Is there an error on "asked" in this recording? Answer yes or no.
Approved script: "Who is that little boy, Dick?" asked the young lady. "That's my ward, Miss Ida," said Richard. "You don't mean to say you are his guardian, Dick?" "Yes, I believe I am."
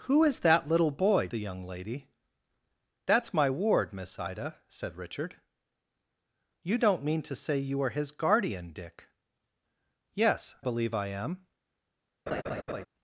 yes